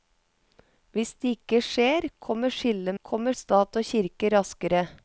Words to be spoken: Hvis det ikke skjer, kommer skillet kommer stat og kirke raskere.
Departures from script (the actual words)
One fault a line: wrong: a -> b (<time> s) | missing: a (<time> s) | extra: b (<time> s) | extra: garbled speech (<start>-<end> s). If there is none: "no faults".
no faults